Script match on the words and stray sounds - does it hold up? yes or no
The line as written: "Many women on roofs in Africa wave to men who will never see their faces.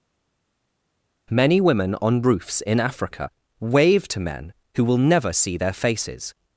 yes